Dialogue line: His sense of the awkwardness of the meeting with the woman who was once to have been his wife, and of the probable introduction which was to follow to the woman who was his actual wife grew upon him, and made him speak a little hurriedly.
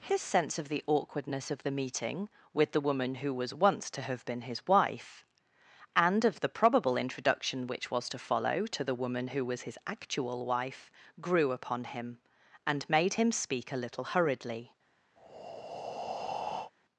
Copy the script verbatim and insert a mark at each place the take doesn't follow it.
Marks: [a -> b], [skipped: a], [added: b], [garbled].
His sense of the awkwardness of the meeting with the woman who was once to have been his wife, and of the probable introduction which was to follow to the woman who was his actual wife grew upon him, and made him speak a little hurriedly.